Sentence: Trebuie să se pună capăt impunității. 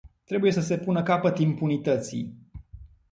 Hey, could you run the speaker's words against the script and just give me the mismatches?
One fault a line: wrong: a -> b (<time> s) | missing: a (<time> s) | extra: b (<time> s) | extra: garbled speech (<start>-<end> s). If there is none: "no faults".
no faults